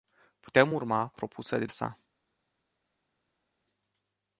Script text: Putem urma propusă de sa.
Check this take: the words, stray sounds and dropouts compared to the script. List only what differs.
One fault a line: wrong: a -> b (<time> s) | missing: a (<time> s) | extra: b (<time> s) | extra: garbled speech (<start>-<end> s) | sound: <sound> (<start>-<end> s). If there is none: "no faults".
no faults